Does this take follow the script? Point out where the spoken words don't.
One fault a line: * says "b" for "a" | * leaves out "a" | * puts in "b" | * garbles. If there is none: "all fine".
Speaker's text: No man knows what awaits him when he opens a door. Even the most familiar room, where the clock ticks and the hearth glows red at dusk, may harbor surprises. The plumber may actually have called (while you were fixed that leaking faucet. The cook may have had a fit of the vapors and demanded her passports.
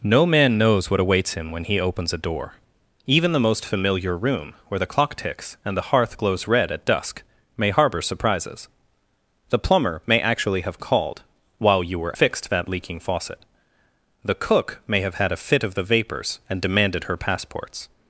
all fine